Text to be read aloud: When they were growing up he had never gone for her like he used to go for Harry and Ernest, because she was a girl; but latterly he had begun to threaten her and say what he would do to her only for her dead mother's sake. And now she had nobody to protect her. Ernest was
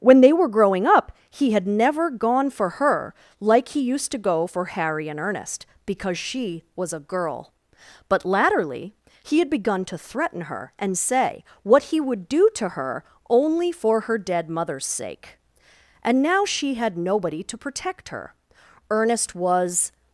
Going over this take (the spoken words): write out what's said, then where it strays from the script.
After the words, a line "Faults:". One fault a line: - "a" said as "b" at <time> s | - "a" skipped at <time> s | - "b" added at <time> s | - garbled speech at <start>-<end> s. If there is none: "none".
When they were growing up he had never gone for her like he used to go for Harry and Ernest, because she was a girl; but latterly he had begun to threaten her and say what he would do to her only for her dead mother's sake. And now she had nobody to protect her. Ernest was
Faults:
none